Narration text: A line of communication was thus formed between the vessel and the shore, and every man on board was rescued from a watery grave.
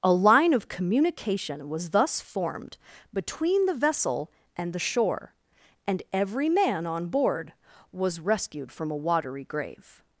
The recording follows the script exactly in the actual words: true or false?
true